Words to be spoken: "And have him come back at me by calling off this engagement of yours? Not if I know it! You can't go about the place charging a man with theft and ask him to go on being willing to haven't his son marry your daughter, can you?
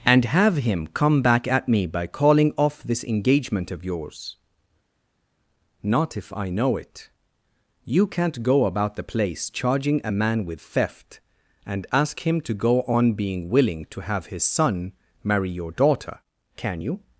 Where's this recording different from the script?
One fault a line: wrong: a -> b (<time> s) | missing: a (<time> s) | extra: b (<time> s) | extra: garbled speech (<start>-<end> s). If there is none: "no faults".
wrong: haven't -> have (14.0 s)